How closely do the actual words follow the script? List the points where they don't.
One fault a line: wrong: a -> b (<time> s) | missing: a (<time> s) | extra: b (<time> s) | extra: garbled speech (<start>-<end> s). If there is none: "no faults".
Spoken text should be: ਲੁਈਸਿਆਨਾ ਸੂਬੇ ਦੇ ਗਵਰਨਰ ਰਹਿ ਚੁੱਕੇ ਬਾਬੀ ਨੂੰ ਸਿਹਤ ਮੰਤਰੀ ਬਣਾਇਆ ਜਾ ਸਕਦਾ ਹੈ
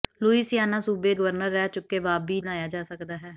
missing: ਦੇ (1.1 s)
missing: ਨੂੰ ਸਿਹਤ ਮੰਤਰੀ (2.4 s)